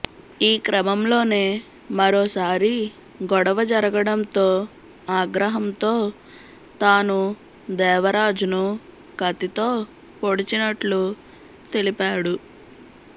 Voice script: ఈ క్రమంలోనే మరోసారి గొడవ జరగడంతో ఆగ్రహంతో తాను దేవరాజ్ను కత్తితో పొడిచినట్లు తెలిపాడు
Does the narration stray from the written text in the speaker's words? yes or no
no